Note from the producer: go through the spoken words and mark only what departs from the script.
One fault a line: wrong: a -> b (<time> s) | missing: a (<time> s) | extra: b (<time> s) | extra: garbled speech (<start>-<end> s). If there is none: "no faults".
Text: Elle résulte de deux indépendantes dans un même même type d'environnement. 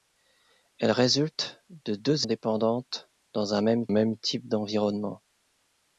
no faults